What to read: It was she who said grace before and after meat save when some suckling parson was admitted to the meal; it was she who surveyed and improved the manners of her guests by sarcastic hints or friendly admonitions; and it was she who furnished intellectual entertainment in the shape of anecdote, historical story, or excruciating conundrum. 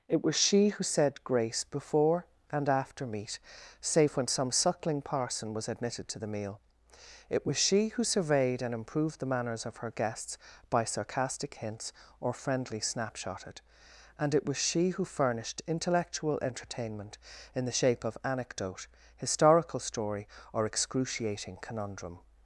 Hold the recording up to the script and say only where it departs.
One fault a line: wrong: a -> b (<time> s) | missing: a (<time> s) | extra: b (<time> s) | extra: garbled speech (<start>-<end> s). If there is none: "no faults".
wrong: admonitions -> snapshotted (12.8 s)